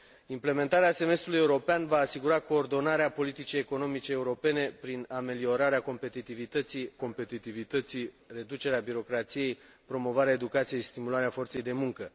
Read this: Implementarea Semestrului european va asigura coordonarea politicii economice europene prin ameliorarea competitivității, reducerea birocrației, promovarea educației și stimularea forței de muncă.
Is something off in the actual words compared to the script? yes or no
yes